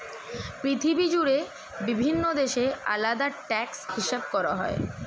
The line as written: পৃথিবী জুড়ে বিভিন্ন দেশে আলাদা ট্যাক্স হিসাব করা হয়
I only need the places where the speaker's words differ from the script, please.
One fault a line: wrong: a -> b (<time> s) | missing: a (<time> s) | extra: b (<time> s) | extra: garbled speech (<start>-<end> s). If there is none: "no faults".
no faults